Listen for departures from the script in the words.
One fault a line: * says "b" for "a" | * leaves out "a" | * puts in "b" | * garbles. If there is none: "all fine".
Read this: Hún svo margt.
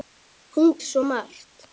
all fine